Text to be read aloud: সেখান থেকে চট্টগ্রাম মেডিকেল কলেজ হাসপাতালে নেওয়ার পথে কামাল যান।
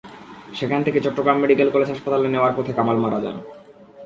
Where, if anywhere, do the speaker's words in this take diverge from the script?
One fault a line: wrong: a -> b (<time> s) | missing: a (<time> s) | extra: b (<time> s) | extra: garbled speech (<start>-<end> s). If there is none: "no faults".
extra: মারা (3.0 s)